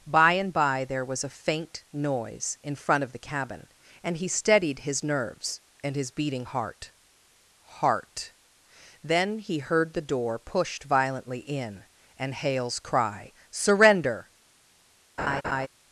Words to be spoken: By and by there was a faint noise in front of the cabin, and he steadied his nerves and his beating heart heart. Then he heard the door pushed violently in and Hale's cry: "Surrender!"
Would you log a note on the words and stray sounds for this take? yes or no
yes